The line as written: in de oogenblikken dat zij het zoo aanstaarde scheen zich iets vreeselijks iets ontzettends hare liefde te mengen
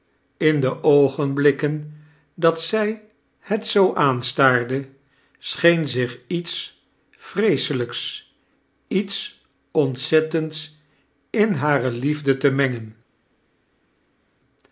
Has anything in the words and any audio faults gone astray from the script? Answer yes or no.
yes